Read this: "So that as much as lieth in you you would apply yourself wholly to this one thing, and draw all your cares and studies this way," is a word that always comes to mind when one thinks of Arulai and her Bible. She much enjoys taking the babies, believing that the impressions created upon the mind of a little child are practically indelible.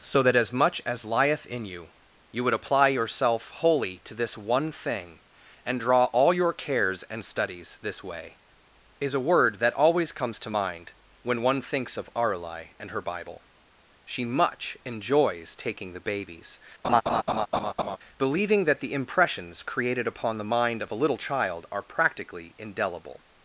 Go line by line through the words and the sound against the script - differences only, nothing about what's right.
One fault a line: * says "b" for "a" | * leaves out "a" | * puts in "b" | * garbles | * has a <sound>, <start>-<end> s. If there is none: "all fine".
* has a laugh, 16.8-18.0 s